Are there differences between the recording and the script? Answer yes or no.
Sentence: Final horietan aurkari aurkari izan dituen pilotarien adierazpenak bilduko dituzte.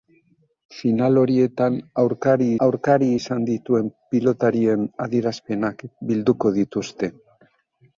no